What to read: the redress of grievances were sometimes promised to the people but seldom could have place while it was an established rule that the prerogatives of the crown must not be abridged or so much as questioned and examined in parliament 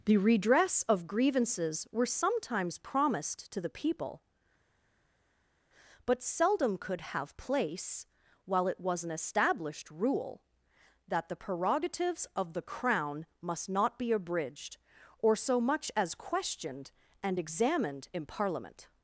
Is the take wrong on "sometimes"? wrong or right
right